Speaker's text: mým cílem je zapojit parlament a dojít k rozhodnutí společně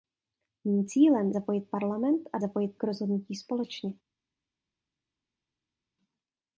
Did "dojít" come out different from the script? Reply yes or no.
yes